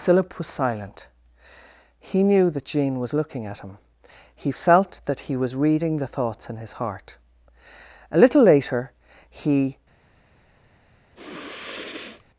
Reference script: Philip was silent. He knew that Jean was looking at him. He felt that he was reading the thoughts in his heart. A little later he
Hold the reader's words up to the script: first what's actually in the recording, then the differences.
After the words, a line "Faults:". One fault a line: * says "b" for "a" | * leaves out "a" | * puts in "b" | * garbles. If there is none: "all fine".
Philip was silent. He knew that Jean was looking at him. He felt that he was reading the thoughts in his heart. A little later he
Faults:
all fine